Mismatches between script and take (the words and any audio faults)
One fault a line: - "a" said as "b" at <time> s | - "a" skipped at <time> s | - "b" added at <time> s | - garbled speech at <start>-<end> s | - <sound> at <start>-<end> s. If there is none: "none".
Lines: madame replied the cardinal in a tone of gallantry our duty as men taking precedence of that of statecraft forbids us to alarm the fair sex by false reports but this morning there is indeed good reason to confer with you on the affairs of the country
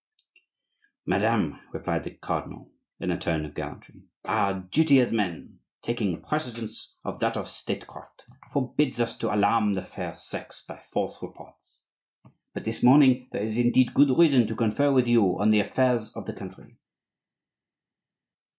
none